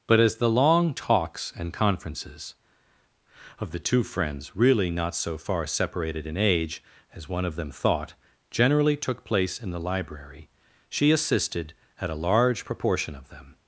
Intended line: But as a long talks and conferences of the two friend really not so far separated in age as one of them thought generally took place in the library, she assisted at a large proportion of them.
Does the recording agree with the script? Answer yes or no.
no